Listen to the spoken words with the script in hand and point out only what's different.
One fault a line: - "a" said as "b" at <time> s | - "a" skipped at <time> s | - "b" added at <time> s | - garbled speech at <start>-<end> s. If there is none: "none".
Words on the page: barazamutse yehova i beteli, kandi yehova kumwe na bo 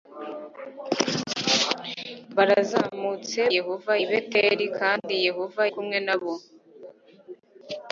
none